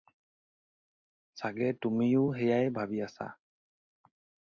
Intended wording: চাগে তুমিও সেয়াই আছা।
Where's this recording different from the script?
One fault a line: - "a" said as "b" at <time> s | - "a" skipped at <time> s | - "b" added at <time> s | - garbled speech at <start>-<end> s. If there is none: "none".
- "ভাবি" added at 2.7 s